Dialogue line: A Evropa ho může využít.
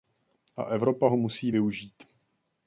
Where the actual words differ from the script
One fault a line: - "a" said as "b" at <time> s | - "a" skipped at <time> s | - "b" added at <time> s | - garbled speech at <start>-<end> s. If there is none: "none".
- "může" said as "musí" at 1.2 s